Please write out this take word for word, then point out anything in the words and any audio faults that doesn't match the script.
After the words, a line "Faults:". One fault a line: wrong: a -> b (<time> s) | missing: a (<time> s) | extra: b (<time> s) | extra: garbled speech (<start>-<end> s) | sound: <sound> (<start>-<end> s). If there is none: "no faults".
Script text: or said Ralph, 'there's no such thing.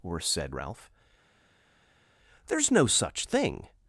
or said Ralph, 'there's no such thing.
Faults:
no faults